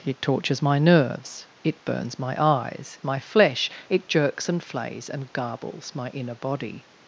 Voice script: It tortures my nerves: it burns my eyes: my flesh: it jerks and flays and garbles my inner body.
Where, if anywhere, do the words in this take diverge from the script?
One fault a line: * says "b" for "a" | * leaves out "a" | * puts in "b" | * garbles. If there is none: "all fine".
all fine